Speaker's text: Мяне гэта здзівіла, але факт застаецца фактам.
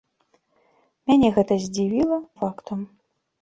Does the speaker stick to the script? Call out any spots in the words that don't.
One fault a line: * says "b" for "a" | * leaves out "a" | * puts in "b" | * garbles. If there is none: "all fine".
* leaves out "але факт застаецца"